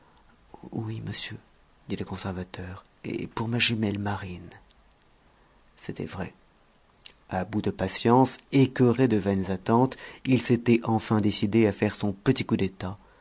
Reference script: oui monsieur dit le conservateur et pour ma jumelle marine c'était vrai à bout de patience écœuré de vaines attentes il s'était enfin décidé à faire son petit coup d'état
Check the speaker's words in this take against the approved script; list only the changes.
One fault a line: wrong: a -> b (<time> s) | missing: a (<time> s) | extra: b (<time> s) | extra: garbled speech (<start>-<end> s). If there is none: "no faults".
no faults